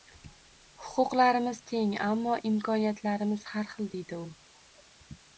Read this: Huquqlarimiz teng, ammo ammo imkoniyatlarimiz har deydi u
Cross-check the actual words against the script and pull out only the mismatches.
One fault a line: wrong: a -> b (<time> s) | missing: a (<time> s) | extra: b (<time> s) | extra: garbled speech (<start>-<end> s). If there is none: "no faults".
missing: ammo (2.4 s)
extra: xil (3.7 s)